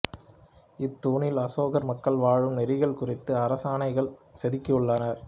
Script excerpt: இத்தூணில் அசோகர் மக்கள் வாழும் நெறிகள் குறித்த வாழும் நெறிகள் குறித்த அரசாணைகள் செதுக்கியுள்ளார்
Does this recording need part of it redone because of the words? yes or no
yes